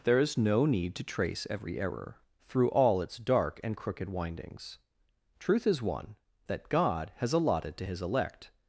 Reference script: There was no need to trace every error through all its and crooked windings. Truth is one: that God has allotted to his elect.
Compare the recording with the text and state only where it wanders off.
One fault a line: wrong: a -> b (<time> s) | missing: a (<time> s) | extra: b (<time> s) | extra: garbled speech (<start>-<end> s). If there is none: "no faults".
wrong: was -> is (0.2 s)
extra: dark (3.2 s)